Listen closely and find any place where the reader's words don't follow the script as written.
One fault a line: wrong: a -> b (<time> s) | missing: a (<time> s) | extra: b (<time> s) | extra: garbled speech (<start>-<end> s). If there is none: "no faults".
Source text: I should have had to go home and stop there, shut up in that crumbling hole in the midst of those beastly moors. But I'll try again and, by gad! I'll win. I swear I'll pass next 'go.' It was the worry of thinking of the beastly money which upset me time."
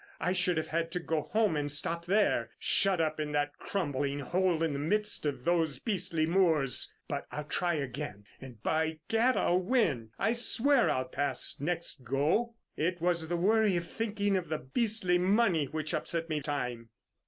no faults